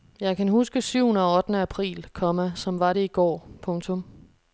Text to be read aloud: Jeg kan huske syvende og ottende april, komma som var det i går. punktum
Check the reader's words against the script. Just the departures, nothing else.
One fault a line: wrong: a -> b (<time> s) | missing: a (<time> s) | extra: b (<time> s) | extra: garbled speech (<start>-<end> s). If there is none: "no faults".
no faults